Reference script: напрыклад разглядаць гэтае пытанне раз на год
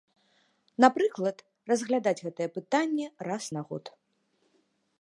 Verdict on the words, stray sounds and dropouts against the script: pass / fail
pass